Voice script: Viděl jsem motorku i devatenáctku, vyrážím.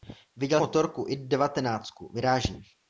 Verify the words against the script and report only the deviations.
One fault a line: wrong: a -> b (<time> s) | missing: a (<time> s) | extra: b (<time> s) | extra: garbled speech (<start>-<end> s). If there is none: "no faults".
missing: jsem (0.6 s)